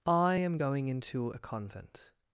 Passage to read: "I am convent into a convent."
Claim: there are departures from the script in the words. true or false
true